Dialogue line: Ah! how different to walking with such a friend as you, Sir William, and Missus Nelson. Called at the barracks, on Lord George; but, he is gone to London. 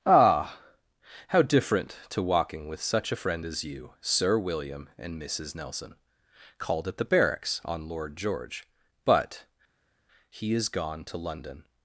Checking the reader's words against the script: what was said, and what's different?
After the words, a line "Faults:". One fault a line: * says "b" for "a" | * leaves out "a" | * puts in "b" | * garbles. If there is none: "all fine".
Ah! how different to walking with such a friend as you, Sir William, and Missus Nelson. Called at the barracks, on Lord George; but, he is gone to London.
Faults:
all fine